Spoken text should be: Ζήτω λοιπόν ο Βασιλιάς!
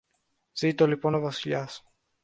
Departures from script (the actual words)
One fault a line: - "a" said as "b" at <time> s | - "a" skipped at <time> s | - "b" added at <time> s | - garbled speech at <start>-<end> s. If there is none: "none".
none